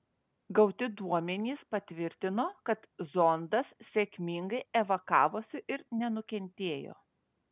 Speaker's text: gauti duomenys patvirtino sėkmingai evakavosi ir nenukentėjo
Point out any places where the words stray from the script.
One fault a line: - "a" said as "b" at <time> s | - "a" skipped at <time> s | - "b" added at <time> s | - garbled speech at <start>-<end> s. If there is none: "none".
- "kad zondas" added at 2.7 s